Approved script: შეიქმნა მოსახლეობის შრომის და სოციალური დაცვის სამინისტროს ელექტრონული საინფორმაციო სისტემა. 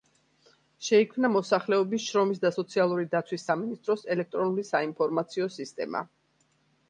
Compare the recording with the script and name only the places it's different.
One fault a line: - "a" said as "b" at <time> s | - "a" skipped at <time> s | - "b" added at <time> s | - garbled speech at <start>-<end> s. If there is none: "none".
none